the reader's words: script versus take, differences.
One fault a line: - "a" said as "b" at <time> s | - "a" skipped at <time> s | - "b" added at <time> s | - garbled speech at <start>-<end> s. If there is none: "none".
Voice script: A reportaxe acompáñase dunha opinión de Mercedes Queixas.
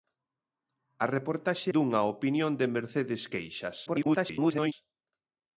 - "acompáñase" skipped at 1.7 s
- garbled speech at 3.9-4.7 s